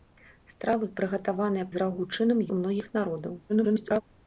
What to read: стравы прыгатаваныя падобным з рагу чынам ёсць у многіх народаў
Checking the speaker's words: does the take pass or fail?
fail